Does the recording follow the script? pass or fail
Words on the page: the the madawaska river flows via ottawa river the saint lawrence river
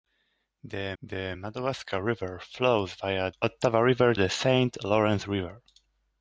pass